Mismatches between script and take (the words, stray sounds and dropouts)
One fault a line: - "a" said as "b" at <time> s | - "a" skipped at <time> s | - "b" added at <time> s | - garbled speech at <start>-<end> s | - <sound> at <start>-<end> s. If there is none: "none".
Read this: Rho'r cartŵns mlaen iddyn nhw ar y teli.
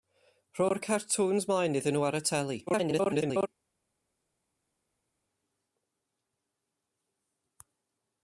- garbled speech at 2.7-3.5 s